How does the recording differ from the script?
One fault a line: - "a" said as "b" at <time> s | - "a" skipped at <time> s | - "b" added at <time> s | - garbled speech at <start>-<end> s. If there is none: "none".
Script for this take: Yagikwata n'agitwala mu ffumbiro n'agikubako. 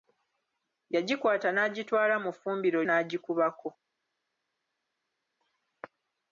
none